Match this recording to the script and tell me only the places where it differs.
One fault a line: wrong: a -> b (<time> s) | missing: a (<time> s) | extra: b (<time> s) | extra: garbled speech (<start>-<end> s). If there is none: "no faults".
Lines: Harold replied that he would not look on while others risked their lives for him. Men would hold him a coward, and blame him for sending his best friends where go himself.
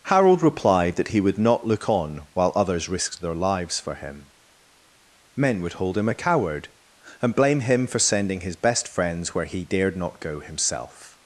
extra: he dared not (9.4 s)